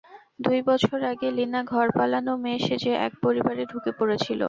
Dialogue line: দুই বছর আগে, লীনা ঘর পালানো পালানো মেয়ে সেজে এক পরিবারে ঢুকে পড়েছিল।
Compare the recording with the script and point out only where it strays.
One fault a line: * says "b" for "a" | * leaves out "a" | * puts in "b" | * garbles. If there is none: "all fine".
* leaves out "পালানো"